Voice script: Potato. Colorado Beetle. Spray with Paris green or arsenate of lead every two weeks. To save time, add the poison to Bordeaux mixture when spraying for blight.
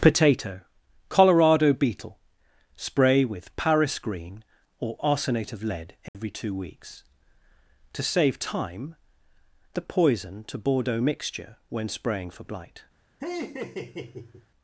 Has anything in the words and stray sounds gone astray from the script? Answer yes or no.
yes